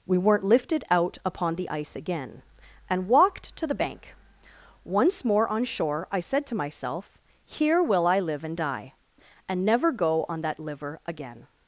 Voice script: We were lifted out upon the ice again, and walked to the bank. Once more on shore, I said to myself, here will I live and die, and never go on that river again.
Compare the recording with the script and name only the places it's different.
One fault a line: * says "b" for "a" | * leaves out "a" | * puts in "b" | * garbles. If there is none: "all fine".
* says "weren't" for "were"
* says "liver" for "river"